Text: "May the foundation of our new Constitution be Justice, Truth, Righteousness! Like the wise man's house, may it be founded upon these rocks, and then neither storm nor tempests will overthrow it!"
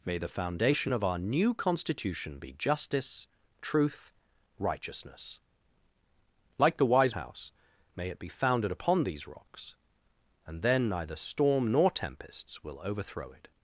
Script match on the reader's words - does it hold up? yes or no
no